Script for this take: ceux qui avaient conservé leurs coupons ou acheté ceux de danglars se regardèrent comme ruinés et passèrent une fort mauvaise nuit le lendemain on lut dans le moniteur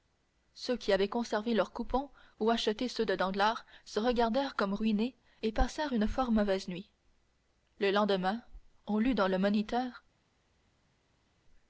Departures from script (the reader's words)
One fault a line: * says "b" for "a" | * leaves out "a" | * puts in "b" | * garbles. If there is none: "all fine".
all fine